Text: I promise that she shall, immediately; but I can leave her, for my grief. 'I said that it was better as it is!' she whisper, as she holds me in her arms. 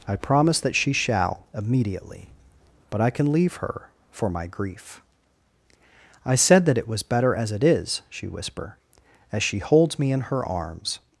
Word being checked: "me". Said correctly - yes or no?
yes